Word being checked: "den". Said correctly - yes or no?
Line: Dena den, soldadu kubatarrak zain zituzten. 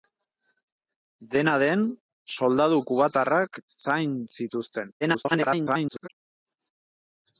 yes